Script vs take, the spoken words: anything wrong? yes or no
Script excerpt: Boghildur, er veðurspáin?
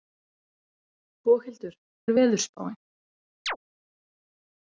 no